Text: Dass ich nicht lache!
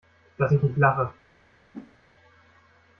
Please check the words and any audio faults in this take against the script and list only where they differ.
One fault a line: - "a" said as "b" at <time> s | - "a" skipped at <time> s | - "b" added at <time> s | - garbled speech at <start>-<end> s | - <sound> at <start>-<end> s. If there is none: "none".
- whoosh at 1.7-2.0 s